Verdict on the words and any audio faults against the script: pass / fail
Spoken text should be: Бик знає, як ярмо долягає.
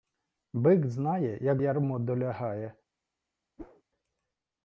fail